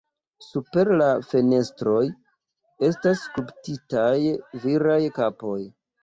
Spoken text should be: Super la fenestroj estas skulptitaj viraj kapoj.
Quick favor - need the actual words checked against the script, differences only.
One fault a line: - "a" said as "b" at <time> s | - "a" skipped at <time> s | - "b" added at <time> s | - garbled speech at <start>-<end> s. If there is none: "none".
none